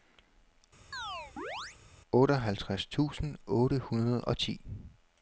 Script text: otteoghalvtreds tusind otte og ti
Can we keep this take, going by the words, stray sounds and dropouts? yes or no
no